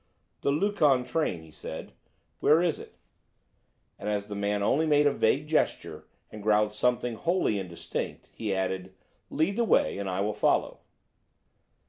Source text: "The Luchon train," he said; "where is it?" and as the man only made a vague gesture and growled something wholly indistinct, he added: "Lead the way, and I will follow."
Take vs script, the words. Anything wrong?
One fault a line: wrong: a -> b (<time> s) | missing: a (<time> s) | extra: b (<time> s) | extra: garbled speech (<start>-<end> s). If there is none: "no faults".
no faults